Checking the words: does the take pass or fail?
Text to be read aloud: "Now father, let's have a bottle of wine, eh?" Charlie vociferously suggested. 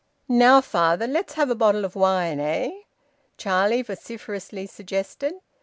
pass